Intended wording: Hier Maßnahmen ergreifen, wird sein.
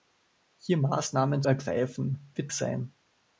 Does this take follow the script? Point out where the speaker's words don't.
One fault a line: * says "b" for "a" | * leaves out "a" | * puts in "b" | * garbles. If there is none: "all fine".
all fine